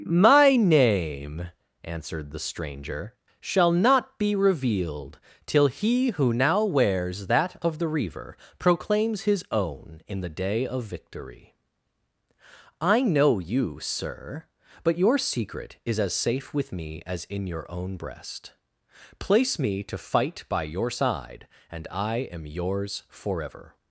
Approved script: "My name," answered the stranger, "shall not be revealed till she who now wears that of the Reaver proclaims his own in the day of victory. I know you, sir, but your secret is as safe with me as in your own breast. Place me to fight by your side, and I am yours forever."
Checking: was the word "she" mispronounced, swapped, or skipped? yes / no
yes